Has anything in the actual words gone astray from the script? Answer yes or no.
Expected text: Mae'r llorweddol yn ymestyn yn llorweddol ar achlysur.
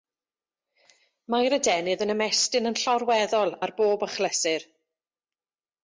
yes